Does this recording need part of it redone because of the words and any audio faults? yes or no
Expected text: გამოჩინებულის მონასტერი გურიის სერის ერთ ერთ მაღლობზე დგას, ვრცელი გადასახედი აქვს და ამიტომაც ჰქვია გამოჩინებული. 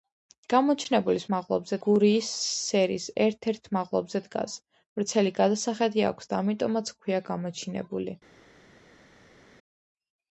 yes